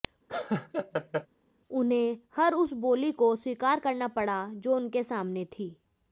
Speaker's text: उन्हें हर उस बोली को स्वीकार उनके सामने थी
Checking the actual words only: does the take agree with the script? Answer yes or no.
no